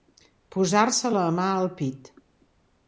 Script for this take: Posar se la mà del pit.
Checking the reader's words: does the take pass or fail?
fail